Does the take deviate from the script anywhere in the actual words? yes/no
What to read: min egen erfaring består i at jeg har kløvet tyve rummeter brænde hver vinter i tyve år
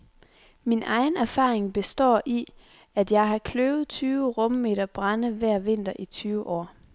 no